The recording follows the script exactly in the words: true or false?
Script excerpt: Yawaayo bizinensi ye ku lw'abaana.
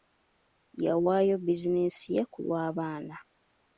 true